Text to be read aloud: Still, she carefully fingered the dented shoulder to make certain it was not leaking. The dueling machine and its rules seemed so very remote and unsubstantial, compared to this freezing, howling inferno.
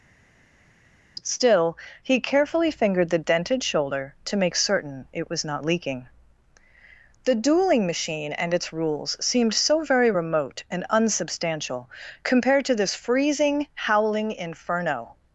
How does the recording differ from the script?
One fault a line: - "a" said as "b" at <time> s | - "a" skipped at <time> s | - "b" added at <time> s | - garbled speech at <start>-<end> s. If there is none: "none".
- "she" said as "he" at 2.0 s